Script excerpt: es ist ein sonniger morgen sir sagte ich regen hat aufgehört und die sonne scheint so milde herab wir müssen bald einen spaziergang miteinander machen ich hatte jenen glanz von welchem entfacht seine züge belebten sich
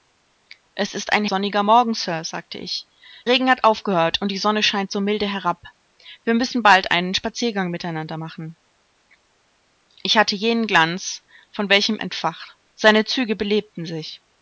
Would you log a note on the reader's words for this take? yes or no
no